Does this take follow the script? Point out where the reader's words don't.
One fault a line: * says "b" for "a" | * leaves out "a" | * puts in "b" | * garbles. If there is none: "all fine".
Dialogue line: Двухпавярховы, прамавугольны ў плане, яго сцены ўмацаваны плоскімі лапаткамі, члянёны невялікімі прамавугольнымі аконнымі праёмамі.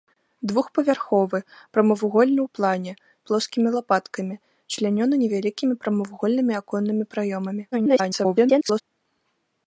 * leaves out "яго сцены ўмацаваны"
* garbles